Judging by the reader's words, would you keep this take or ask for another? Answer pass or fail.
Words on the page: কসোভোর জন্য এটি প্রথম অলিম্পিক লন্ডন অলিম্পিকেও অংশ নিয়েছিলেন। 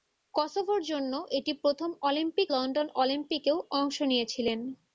pass